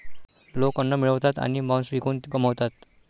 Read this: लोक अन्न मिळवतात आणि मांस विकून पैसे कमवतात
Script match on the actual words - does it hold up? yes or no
no